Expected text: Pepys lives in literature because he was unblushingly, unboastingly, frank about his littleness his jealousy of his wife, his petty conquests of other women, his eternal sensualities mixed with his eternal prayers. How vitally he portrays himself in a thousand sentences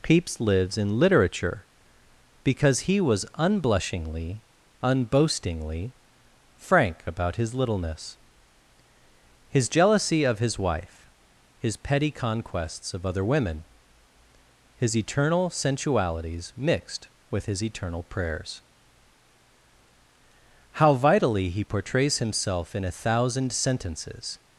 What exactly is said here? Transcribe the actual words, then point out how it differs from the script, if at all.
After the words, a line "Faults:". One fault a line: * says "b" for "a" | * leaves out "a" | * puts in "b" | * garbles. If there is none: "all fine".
Pepys lives in literature because he was unblushingly, unboastingly, frank about his littleness his jealousy of his wife, his petty conquests of other women, his eternal sensualities mixed with his eternal prayers. How vitally he portrays himself in a thousand sentences
Faults:
all fine